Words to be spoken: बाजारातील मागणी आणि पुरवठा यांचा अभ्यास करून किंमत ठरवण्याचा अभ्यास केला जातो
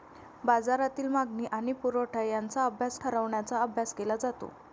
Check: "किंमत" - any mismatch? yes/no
yes